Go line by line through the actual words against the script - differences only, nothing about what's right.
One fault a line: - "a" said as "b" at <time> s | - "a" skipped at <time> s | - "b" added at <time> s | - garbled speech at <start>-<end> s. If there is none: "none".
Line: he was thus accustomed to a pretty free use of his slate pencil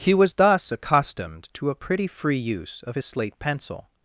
none